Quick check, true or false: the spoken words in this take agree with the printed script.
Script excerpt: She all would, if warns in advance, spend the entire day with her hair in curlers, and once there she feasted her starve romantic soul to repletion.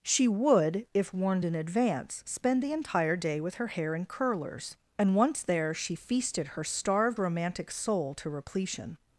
false